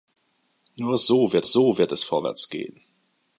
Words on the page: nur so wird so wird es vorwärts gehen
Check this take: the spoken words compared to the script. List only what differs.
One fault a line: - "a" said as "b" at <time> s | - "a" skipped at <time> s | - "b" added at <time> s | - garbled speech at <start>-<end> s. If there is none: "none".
none